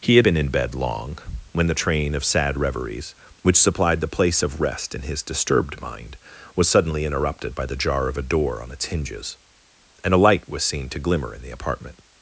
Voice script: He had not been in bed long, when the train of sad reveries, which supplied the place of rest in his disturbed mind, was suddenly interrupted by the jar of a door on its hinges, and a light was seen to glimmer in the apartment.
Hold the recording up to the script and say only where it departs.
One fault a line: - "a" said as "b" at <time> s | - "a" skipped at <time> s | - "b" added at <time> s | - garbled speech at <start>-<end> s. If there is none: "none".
- "not" skipped at 0.2 s